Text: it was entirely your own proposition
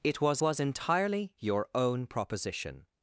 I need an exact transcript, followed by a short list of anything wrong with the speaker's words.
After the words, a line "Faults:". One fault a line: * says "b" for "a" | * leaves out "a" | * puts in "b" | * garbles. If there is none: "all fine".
it was was entirely your own proposition
Faults:
* puts in "was"